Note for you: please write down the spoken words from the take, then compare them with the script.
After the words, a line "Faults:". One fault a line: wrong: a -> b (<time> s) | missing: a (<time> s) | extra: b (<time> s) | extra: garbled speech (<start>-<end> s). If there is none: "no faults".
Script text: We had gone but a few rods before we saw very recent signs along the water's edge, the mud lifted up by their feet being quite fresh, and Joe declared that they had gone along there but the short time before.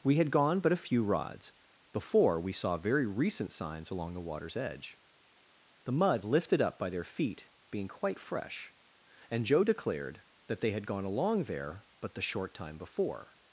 We had gone but a few rods before we saw very recent signs along the water's edge, the mud lifted up by their feet being quite fresh, and Joe declared that they had gone along there but the short time before.
Faults:
no faults